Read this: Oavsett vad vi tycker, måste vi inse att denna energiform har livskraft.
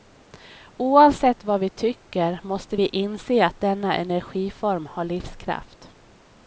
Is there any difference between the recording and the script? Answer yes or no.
no